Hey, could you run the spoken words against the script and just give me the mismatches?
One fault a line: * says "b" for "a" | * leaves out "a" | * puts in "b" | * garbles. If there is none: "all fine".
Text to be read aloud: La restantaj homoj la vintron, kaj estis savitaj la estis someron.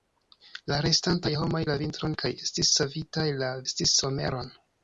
all fine